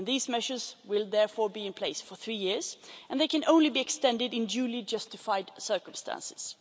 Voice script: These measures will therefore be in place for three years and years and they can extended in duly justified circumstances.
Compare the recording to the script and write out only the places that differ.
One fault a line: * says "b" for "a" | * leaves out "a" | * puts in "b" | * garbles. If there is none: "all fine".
* says "they can only be" for "years and they can"